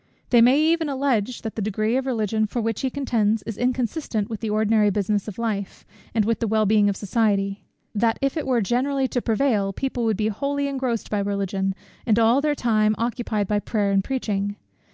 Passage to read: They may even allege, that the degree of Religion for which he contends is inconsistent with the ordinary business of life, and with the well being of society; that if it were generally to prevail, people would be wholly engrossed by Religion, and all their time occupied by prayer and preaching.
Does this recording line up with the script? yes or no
yes